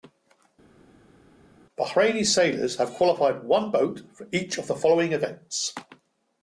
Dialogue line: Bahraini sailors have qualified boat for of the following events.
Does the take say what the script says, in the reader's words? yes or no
no